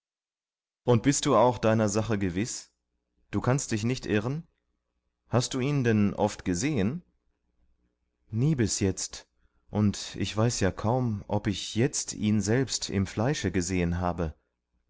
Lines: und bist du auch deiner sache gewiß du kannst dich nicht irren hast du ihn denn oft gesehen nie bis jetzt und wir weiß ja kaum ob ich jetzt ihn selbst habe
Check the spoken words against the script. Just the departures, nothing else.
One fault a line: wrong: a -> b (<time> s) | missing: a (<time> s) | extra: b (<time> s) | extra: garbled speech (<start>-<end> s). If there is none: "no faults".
wrong: wir -> ich (10.2 s)
extra: im fleische gesehen (12.9 s)